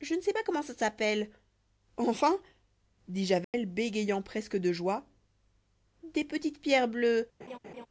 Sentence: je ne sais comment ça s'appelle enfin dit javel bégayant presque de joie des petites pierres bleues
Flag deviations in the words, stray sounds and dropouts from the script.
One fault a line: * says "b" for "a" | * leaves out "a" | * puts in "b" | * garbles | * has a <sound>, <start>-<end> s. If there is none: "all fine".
* puts in "pas"
* has a dropout, 3.4-3.5 s
* has a laugh, 7.4-7.9 s